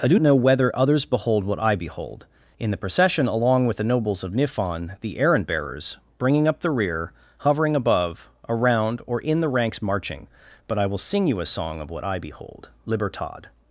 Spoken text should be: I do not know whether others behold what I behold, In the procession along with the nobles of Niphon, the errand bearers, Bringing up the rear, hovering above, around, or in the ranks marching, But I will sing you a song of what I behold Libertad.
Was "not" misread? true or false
true